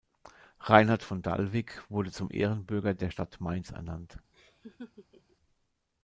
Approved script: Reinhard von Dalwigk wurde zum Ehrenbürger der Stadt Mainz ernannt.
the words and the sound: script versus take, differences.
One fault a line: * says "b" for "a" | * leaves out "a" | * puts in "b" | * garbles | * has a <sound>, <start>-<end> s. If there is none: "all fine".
* has a laugh, 4.3-5.4 s